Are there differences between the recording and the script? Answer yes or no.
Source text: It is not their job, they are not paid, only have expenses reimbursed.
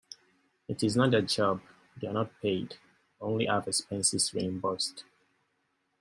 no